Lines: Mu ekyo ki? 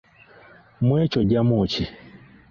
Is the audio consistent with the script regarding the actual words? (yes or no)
no